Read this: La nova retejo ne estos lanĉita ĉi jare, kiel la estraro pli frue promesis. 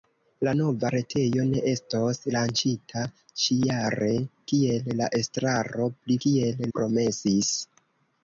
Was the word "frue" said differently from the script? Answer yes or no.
yes